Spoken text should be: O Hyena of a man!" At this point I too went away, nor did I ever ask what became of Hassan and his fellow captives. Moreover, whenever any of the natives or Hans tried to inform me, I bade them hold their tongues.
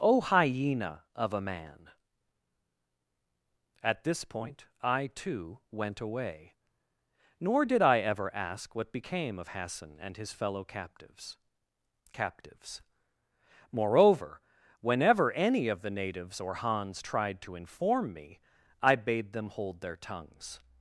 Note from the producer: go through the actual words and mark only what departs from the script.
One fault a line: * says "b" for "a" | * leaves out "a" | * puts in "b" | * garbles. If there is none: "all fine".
* puts in "captives"